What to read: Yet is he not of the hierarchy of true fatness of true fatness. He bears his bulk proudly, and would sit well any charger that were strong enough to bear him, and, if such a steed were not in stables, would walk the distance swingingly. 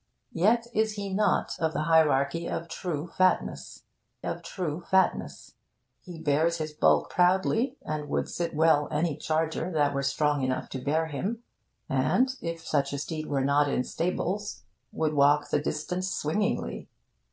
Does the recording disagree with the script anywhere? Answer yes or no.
no